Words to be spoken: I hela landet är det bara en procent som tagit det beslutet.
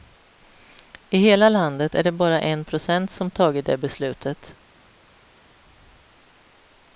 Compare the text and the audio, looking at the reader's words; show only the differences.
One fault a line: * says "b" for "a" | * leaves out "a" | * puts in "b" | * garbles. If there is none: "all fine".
all fine